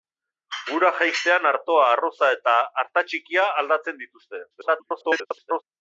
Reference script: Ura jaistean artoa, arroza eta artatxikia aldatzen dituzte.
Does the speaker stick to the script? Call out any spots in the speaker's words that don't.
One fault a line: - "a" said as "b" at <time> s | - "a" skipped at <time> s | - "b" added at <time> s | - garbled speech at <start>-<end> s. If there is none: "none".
- garbled speech at 4.5-5.6 s